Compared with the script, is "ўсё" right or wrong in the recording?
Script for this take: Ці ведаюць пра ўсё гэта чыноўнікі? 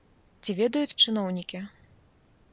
wrong